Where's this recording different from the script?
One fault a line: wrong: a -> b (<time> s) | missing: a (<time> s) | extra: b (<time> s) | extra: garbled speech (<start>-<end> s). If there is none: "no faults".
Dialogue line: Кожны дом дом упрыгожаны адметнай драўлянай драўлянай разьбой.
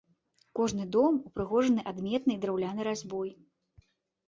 missing: дом (1.2 s)
missing: драўлянай (2.9 s)